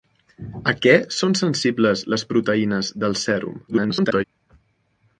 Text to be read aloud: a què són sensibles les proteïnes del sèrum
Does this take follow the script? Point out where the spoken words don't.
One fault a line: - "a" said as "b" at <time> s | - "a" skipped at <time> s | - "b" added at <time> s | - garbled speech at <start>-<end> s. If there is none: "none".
- garbled speech at 3.7-4.2 s